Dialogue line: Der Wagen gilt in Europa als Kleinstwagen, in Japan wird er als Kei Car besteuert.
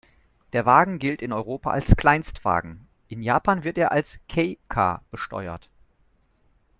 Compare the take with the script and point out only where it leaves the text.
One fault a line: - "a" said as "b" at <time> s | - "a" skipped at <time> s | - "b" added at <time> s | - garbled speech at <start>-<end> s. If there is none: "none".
none